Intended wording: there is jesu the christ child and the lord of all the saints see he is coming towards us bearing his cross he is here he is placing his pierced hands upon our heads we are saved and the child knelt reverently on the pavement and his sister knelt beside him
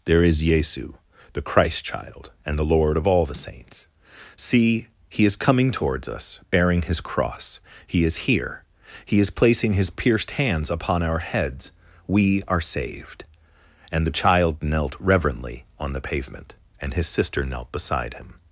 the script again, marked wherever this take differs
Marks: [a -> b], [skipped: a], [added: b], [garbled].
there is jesu the christ child and the lord of all the saints see he is coming towards us bearing his cross he is here he is placing his pierced hands upon our heads we are saved and the child knelt reverently on the pavement and his sister knelt beside him